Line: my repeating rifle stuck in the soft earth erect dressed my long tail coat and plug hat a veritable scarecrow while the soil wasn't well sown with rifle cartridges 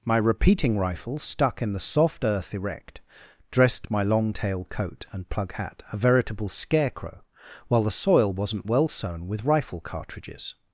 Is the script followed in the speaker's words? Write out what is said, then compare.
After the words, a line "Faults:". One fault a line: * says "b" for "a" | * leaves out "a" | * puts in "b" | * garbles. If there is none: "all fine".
my repeating rifle stuck in the soft earth erect dressed my long tail coat and plug hat a veritable scarecrow while the soil wasn't well sown with rifle cartridges
Faults:
all fine